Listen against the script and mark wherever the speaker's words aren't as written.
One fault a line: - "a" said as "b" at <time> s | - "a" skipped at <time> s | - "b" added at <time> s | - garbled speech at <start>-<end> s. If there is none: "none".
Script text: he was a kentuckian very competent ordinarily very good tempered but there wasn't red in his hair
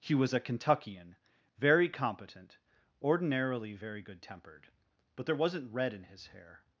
none